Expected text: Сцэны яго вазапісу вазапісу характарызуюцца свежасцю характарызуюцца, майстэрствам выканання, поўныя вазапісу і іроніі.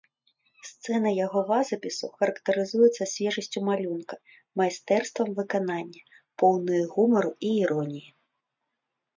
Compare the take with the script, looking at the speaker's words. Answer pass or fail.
fail